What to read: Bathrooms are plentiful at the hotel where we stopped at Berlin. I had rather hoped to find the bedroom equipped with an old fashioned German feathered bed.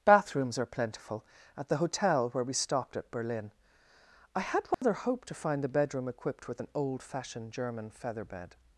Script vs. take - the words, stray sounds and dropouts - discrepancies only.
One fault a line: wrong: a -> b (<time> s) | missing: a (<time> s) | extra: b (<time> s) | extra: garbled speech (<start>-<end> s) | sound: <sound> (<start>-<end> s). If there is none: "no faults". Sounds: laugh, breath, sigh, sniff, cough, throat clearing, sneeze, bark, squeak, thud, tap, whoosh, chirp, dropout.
sound: dropout (4.7-4.8 s)
wrong: feathered -> feather (7.9 s)